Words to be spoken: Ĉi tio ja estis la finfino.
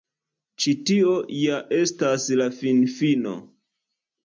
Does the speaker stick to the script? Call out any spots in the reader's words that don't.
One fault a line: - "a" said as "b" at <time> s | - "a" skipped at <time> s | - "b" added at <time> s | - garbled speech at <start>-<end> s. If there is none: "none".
- "estis" said as "estas" at 1.8 s